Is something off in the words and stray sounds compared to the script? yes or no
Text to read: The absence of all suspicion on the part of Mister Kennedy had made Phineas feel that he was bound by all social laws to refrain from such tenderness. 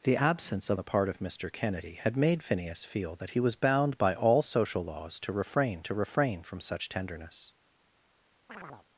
yes